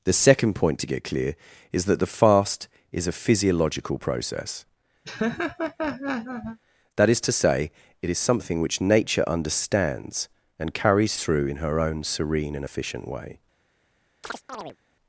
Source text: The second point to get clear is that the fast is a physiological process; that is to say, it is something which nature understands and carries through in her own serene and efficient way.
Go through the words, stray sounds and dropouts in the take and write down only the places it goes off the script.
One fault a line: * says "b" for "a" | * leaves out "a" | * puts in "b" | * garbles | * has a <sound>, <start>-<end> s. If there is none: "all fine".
* has a laugh, 5.0-6.6 s
* has a chirp, 14.2-14.8 s